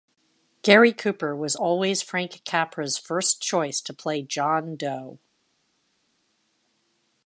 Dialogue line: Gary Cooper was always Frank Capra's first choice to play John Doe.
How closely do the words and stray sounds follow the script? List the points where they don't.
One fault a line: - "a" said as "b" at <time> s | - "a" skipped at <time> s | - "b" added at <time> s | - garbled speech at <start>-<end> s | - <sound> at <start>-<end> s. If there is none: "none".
none